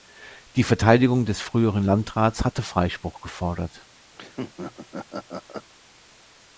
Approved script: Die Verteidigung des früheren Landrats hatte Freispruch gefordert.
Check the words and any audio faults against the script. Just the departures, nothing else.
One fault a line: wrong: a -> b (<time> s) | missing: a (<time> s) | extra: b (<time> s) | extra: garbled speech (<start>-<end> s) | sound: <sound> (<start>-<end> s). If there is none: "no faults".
sound: laugh (4.2-5.7 s)